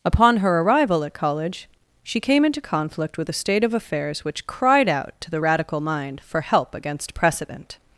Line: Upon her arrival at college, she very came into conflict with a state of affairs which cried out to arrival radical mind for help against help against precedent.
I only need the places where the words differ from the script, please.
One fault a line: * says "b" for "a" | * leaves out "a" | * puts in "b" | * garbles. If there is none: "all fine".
* leaves out "very"
* says "the" for "arrival"
* leaves out "help against"